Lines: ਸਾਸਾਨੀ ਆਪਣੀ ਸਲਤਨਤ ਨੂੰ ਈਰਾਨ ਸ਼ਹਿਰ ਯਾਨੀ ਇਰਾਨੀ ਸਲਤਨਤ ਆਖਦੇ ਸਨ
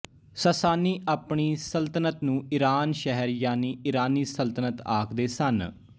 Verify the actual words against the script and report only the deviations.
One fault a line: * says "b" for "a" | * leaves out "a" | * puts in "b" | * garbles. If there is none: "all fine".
all fine